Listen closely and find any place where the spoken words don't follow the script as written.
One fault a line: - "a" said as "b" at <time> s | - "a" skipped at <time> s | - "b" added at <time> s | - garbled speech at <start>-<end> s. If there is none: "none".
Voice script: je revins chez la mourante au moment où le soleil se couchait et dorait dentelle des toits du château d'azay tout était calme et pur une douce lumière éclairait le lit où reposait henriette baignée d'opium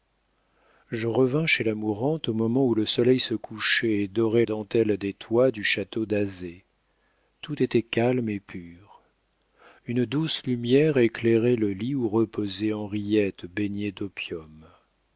none